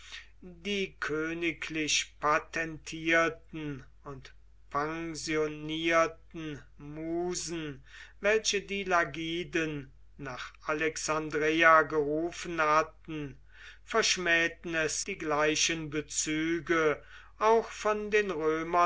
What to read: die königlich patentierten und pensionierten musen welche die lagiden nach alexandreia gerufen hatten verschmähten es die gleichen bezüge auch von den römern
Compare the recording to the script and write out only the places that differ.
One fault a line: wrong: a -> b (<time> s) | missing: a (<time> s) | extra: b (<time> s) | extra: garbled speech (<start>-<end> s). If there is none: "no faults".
no faults